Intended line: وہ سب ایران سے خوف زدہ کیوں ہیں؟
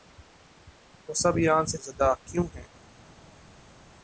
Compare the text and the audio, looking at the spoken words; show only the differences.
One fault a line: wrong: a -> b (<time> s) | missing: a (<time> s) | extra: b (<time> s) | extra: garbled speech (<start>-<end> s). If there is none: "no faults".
missing: خوف (1.8 s)